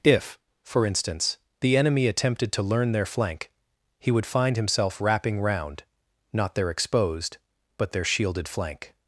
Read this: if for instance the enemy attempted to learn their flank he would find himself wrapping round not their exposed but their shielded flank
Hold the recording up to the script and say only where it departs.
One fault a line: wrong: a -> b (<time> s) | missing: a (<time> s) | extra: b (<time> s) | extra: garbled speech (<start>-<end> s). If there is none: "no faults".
no faults